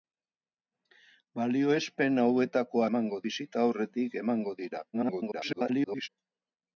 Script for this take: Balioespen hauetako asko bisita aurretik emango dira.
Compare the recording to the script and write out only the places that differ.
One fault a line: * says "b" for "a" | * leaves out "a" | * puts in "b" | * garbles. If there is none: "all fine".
* says "emango" for "asko"
* garbles